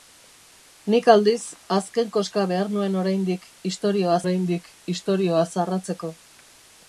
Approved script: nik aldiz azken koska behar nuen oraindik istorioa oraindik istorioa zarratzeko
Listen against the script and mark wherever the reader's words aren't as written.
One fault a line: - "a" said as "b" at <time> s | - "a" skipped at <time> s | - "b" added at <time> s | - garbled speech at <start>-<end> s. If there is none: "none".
none